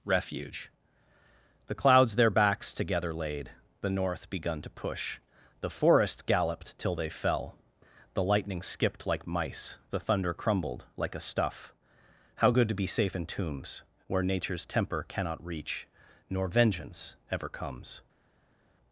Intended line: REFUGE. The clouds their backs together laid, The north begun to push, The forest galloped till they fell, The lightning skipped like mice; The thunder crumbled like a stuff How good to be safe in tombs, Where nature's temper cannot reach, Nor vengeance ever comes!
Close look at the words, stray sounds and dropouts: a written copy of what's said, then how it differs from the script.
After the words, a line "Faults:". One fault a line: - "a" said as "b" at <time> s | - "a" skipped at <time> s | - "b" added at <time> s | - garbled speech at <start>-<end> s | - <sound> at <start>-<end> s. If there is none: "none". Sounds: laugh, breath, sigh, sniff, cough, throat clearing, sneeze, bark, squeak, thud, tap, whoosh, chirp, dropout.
REFUGE. The clouds their backs together laid, The north begun to push, The forest galloped till they fell, The lightning skipped like mice; The thunder crumbled like a stuff How good to be safe in tombs, Where nature's temper cannot reach, Nor vengeance ever comes!
Faults:
none